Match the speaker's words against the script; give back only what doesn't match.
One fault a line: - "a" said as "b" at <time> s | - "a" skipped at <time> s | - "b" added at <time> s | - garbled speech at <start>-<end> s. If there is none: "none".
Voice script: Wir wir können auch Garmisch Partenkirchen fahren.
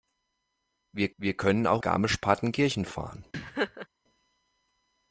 none